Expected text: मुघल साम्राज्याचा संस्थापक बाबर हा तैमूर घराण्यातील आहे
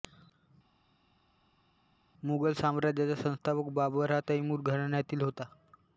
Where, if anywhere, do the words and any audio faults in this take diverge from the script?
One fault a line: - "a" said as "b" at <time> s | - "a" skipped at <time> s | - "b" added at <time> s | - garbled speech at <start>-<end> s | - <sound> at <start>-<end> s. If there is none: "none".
- "आहे" said as "होता" at 5.2 s